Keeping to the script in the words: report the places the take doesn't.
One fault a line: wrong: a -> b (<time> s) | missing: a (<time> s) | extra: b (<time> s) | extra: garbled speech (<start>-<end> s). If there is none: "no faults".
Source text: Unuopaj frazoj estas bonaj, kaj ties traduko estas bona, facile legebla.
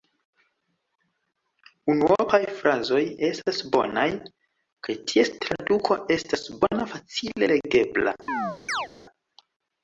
no faults